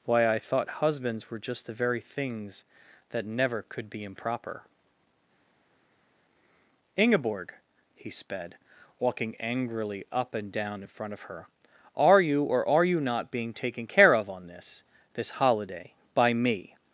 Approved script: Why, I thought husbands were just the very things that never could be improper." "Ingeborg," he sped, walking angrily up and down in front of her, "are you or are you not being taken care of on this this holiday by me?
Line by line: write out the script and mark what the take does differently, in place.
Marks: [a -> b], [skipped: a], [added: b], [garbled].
Why, I thought husbands were just the very things that never could be improper." "Ingeborg," he sped, walking angrily up and down in front of her, "are you or are you not being taken care of on this this holiday by me?